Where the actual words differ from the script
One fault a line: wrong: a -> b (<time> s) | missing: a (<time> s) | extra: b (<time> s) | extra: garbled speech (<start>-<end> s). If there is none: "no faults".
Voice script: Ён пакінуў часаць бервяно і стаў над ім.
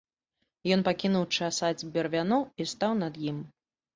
no faults